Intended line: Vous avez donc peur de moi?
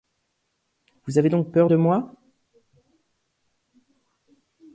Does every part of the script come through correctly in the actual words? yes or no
yes